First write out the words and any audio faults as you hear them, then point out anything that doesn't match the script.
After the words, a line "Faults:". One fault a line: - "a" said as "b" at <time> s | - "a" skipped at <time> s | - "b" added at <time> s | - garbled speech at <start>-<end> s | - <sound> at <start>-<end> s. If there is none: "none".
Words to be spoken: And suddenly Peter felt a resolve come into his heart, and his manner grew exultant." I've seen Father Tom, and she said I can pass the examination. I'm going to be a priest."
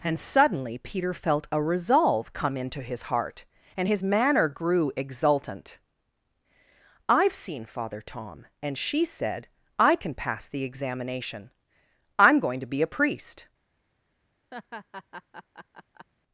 And suddenly Peter felt a resolve come into his heart, and his manner grew exultant." I've seen Father Tom, and she said I can pass the examination. I'm going to be a priest."
Faults:
- laugh at 14.5-16.1 s